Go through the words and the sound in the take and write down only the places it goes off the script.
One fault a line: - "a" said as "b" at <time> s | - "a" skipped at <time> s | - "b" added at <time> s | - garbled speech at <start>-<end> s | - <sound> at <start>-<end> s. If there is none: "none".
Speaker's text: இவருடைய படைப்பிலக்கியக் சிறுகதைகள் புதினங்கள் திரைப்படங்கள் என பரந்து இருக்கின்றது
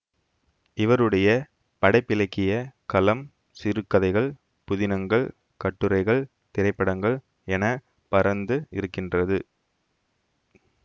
- "களம்" added at 2.9 s
- "கட்டுரைகள்" added at 5.6 s